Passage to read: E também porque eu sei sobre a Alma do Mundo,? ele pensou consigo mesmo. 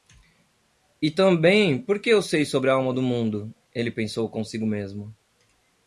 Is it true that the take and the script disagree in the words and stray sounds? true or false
false